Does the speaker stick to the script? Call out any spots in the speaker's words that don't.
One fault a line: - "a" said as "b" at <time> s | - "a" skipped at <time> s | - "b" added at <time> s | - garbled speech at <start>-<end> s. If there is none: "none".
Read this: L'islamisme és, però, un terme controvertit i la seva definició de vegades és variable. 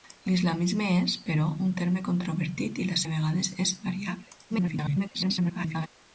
- "seva definició" skipped at 3.0 s
- garbled speech at 4.5-5.9 s